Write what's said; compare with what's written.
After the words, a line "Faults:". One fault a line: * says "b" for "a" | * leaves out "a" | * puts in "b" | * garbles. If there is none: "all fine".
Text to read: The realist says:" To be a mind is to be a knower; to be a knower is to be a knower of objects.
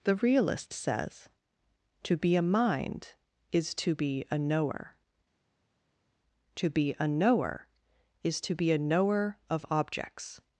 The realist says:" To be a mind is to be a knower; to be a knower is to be a knower of objects.
Faults:
all fine